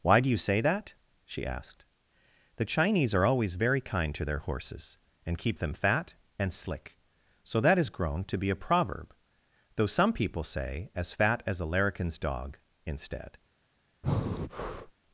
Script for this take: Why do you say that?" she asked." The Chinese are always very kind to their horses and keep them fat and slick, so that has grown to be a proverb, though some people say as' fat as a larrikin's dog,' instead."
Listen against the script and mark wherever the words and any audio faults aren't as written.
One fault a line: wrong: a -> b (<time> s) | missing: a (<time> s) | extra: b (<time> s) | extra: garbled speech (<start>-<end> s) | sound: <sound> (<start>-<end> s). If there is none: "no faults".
sound: breath (14.0-14.9 s)